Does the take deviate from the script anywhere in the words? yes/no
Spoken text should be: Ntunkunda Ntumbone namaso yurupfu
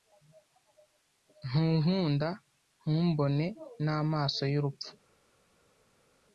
no